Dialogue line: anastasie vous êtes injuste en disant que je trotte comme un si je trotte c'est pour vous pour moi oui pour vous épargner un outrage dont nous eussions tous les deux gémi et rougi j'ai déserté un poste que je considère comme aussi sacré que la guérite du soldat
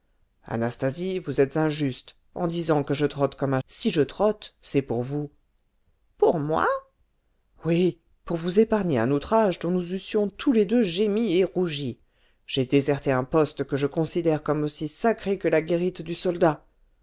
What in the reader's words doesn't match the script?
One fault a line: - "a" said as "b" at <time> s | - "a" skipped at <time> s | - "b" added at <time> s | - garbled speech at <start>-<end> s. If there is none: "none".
none